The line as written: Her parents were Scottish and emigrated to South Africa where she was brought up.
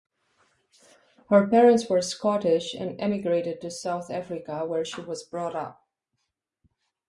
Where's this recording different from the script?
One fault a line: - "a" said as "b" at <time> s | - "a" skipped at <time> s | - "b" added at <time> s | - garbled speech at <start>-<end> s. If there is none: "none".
none